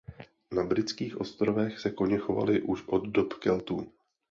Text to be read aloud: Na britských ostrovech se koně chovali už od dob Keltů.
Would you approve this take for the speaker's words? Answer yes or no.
yes